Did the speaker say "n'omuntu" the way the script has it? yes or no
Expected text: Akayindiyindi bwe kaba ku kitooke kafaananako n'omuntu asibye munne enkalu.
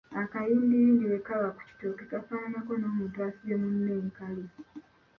yes